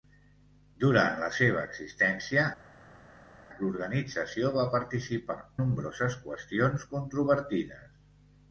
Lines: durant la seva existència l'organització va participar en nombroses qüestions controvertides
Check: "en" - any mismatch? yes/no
yes